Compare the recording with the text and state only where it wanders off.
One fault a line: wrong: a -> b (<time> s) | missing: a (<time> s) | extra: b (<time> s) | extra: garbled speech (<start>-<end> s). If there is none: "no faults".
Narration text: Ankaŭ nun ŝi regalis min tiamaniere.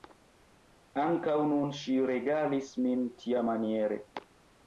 no faults